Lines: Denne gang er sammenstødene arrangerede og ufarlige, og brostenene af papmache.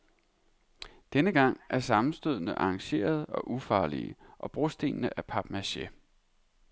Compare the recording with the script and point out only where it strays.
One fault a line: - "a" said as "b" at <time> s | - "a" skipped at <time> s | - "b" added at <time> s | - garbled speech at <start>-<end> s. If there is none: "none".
none